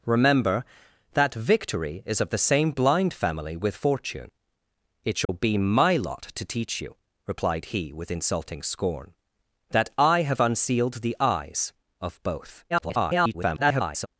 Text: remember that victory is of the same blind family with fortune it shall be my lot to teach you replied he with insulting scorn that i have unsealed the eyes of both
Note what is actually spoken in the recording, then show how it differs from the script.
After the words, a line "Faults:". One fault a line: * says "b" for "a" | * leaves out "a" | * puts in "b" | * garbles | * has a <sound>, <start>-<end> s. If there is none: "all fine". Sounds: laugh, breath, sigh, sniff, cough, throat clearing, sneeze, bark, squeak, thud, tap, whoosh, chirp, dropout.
remember that victory is of the same blind family with fortune it shall be my lot to teach you replied he with insulting scorn that i have unsealed the eyes of both [garbled]
Faults:
* has a dropout, 5.2-5.3 s
* garbles